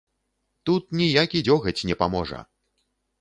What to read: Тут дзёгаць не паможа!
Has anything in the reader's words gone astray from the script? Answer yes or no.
yes